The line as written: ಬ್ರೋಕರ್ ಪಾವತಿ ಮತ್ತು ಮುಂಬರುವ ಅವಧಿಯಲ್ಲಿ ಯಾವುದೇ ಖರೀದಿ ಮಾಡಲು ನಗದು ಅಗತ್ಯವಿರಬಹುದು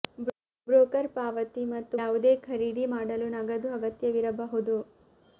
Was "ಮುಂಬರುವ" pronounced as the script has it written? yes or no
no